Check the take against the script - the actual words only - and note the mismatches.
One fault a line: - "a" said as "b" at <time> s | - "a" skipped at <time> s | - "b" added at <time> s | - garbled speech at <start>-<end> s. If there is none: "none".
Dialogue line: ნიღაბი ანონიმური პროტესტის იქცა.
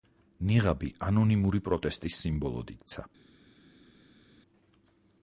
- "სიმბოლოდ" added at 2.2 s